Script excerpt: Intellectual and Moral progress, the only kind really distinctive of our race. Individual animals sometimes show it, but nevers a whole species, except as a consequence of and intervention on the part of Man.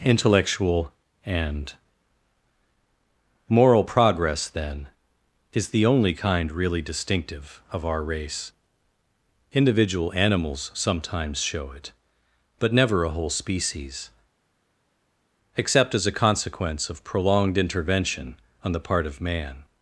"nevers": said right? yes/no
no